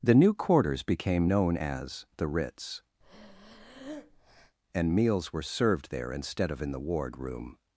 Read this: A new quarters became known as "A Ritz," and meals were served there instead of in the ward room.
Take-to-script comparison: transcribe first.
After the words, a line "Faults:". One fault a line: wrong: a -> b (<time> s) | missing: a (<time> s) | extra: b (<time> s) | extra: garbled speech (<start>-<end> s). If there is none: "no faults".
The new quarters became known as "The Ritz," and meals were served there instead of in the ward room.
Faults:
wrong: A -> The (0.0 s)
wrong: A -> The (2.2 s)